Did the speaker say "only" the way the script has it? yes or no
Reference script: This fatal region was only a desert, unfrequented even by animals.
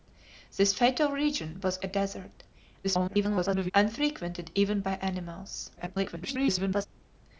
no